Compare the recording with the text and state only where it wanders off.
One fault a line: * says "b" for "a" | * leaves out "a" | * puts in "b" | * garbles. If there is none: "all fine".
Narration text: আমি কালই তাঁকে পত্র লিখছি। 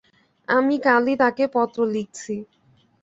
all fine